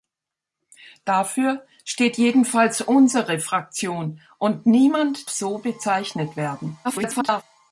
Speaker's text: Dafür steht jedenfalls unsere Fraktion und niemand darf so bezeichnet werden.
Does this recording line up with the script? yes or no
no